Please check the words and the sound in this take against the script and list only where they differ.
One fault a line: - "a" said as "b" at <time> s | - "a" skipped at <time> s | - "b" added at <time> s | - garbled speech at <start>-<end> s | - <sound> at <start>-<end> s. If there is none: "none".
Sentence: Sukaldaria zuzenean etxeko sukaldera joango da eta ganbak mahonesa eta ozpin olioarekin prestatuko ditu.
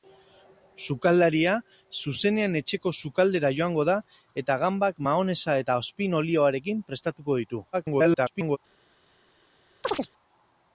- garbled speech at 7.7-8.6 s
- chirp at 9.8-10.1 s